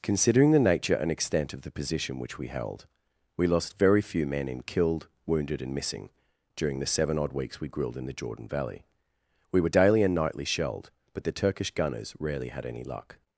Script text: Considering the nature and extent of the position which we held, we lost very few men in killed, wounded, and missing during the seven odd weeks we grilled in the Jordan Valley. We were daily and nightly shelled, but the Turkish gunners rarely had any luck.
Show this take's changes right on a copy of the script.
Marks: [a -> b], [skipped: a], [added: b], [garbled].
Considering the nature and extent of the position which we held, we lost very few men in killed, wounded, and missing during the seven odd weeks we grilled in the Jordan Valley. We were daily and nightly shelled, but the Turkish gunners rarely had any luck.